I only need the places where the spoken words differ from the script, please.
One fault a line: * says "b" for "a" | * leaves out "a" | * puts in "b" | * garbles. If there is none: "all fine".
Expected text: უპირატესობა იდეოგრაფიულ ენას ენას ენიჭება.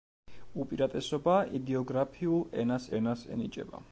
all fine